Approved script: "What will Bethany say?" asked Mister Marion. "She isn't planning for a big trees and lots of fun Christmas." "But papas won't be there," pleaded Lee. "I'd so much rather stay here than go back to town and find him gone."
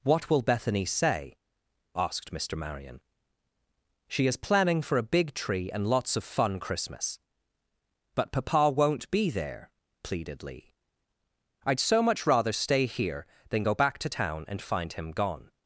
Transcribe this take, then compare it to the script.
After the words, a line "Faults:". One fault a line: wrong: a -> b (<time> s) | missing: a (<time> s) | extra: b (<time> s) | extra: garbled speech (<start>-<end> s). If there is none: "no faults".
"What will Bethany say?" asked Mister Marion. "She is planning for a big tree and lots of fun Christmas." "But papa won't be there," pleaded Lee. "I'd so much rather stay here than go back to town and find him gone."
Faults:
wrong: isn't -> is (4.2 s)
wrong: trees -> tree (5.3 s)
wrong: papas -> papa (8.3 s)